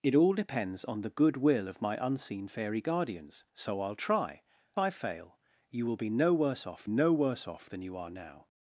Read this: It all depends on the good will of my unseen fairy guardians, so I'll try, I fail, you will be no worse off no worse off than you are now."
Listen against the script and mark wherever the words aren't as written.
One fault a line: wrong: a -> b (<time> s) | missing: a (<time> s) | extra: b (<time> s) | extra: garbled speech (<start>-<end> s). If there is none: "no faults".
no faults